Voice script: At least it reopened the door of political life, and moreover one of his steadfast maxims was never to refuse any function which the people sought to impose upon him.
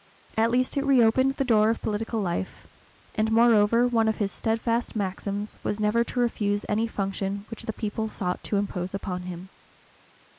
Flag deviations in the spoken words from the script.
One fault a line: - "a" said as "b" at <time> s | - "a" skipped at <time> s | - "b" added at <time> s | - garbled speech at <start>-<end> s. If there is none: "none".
none